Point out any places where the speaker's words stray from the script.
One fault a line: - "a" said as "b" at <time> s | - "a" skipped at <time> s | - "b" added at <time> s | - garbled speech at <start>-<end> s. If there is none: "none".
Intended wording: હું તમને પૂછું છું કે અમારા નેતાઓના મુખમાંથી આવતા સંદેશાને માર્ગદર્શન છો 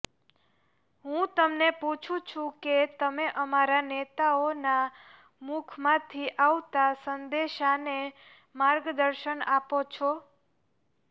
- "તમે" added at 3.0 s
- "આપો" added at 9.5 s